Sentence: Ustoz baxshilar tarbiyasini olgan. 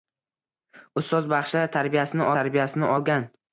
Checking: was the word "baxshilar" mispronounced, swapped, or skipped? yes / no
no